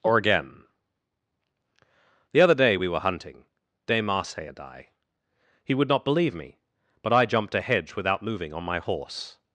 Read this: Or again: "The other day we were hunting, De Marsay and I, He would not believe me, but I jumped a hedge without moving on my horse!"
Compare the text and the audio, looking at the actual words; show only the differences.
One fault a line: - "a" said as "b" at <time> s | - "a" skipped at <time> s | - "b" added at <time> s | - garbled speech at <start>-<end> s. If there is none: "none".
none